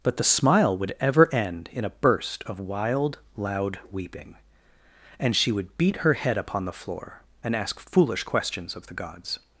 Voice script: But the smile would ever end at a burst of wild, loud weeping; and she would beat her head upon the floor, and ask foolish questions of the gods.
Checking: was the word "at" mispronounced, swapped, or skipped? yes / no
yes